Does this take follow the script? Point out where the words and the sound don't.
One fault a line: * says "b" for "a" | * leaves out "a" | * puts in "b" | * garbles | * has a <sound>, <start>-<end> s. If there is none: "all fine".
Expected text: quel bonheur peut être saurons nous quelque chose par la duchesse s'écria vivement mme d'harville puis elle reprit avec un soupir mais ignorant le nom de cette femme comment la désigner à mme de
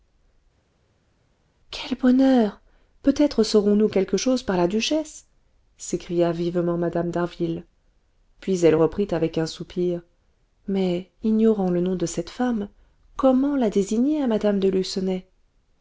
all fine